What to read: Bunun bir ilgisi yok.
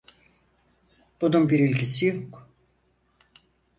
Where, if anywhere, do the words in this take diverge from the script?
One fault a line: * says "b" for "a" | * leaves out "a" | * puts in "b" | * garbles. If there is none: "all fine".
all fine